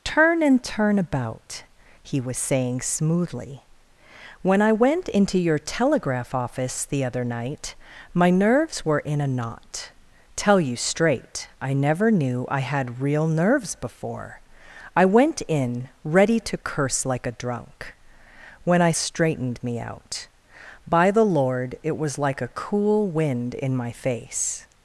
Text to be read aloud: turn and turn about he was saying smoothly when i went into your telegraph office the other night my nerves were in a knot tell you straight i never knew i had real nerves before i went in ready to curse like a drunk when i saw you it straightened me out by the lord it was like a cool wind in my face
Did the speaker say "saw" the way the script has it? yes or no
no